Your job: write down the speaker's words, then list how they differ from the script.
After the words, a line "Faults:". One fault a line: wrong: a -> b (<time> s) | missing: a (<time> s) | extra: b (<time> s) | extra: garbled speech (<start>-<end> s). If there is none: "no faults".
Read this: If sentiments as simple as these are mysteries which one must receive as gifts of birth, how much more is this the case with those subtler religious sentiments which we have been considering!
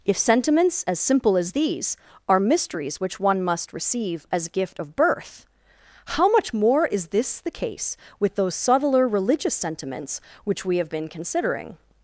If sentiments as simple as these are mysteries which one must receive as gift of birth, how much more is this the case with those subtler religious sentiments which we have been considering!
Faults:
wrong: gifts -> gift (4.5 s)